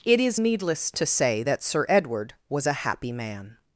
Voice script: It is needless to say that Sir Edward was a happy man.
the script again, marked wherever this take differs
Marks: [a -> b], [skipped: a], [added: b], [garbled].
It is needless to say that Sir Edward was a happy man.